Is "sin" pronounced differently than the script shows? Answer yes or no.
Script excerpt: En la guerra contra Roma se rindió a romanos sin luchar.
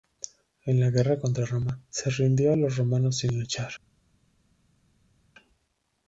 no